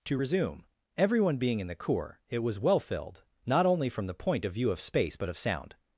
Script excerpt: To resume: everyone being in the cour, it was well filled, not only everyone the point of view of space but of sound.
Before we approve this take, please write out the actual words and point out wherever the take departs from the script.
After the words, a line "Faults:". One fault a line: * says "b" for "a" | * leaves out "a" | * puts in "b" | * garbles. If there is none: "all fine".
To resume: everyone being in the cour, it was well filled, not only from the point of view of space but of sound.
Faults:
* says "from" for "everyone"